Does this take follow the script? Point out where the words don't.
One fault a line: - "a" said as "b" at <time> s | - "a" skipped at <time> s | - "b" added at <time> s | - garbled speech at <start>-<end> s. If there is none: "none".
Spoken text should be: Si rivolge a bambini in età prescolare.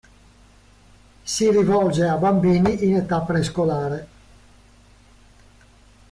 none